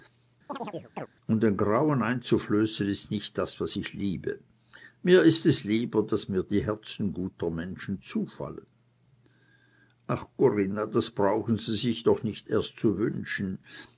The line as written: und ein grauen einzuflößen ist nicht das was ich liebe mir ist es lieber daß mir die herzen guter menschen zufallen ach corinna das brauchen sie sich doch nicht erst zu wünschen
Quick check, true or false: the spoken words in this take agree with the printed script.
true